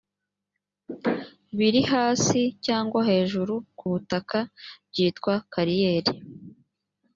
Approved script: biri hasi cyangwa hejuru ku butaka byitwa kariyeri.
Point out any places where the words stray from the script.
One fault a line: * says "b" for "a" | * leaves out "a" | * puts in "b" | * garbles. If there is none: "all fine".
all fine